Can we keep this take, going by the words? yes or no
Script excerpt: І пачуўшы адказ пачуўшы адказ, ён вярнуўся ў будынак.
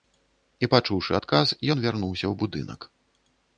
no